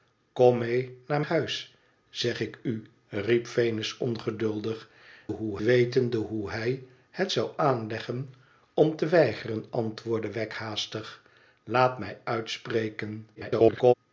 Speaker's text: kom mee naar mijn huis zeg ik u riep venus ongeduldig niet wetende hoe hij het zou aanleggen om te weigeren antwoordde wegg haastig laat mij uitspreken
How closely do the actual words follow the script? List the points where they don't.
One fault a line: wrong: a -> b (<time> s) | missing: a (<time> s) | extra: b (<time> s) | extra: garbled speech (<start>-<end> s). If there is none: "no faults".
missing: mijn (1.2 s)
wrong: niet -> hoe (5.3 s)
extra: garbled speech (13.3-13.9 s)